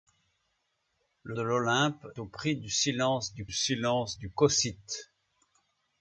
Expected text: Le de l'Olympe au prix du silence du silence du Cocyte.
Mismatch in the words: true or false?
false